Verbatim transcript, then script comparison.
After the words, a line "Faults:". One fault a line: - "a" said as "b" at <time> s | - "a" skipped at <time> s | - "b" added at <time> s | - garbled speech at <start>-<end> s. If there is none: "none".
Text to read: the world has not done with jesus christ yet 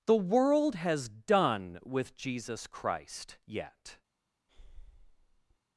the world has done with jesus christ yet
Faults:
- "not" skipped at 1.1 s